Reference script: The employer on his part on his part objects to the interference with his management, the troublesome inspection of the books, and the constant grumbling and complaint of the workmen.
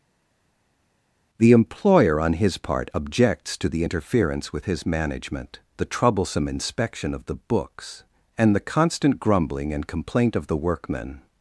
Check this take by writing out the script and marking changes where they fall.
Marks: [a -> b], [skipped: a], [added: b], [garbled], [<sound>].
The employer on his part [skipped: on his part] objects to the interference with his management, the troublesome inspection of the books, and the constant grumbling and complaint of the workmen.